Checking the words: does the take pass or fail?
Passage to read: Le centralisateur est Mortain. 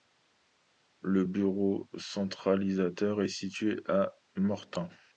fail